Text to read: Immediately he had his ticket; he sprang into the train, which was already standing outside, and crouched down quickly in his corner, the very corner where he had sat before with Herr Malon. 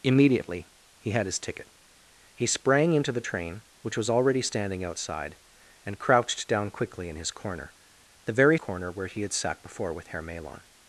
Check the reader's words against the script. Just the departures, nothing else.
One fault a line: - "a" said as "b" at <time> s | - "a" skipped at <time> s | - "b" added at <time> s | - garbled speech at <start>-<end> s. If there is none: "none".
none